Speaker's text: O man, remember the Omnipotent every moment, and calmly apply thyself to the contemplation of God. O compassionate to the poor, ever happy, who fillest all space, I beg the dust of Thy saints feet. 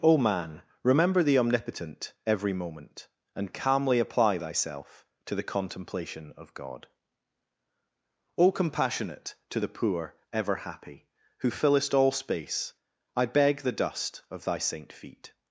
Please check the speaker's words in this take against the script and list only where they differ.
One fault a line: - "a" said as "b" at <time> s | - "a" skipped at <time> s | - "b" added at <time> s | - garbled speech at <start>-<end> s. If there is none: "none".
- "saints" said as "saint" at 14.6 s